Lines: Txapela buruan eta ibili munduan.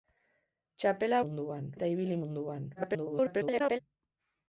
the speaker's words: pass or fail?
fail